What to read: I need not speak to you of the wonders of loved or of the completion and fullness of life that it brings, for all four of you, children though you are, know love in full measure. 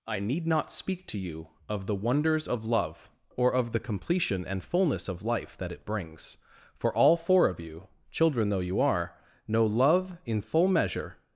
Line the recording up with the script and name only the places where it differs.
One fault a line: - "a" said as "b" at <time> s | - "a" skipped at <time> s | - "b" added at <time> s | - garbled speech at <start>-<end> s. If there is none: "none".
- "loved" said as "love" at 2.6 s